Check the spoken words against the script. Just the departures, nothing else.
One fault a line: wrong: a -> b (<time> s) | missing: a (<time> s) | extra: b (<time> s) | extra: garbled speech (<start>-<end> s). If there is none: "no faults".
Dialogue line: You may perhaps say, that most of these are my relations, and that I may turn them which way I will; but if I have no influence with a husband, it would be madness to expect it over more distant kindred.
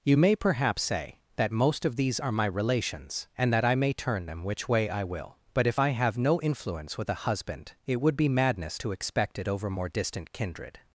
no faults